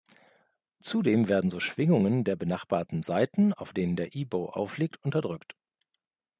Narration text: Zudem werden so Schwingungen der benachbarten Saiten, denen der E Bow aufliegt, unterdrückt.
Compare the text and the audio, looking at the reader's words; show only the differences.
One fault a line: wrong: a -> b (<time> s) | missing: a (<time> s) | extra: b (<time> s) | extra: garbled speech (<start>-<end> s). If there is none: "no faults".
extra: auf (3.5 s)